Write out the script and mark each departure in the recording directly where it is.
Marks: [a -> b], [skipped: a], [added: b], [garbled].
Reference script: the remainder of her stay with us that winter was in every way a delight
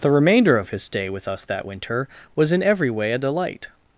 the remainder of [her -> his] stay with us that winter was in every way a delight